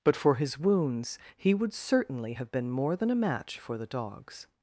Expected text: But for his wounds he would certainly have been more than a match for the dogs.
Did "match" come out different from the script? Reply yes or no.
no